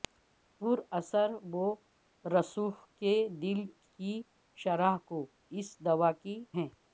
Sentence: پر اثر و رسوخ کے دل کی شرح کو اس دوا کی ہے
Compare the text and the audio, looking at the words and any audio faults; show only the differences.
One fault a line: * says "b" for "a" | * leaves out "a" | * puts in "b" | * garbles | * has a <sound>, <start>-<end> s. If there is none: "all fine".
all fine